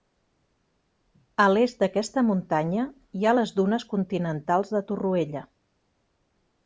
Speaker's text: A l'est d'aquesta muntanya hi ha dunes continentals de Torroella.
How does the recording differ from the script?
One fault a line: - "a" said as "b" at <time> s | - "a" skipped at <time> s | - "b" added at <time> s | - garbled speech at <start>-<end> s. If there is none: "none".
- "les" added at 3.4 s